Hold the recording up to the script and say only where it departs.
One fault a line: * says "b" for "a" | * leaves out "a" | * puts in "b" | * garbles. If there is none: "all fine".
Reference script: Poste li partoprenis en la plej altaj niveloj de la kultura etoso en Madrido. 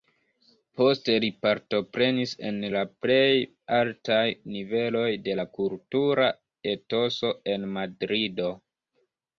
all fine